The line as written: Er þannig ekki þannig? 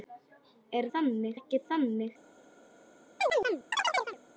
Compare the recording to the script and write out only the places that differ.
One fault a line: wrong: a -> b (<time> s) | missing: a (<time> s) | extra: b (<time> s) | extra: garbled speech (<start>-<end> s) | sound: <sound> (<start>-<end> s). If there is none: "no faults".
sound: chirp (3.2-4.2 s)